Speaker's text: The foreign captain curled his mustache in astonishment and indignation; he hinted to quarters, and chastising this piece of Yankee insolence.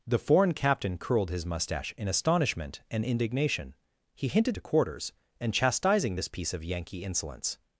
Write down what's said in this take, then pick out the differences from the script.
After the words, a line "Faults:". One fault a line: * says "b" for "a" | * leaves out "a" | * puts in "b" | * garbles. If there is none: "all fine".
The foreign captain curled his mustache in astonishment and indignation; he hinted to quarters, and chastising this piece of Yankee insolence.
Faults:
all fine